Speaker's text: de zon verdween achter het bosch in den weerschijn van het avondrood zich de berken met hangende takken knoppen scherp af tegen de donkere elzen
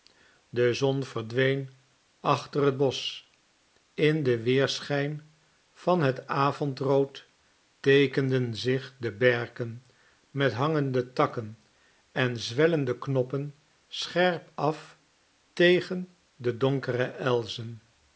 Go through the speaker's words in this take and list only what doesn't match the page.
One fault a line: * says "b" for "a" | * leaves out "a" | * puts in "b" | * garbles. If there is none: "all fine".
* puts in "teekenden"
* puts in "en zwellende"